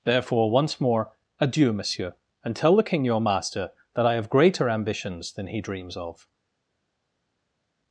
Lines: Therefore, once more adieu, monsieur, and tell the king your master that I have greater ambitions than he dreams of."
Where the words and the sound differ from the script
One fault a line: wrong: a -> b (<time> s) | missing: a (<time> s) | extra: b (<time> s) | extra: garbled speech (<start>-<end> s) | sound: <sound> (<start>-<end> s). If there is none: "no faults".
no faults